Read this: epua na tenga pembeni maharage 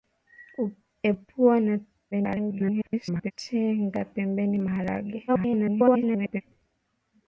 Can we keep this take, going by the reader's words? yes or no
no